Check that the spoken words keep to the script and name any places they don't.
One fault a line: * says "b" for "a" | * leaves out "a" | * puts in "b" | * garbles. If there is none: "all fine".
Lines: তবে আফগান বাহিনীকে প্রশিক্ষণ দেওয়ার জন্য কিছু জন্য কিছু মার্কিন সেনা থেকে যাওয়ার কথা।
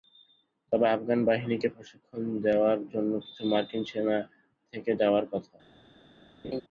* leaves out "জন্য কিছু"